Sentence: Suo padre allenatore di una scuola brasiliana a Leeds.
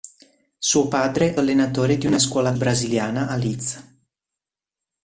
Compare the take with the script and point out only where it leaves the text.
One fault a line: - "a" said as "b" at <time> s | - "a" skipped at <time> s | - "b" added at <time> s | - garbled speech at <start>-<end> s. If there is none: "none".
none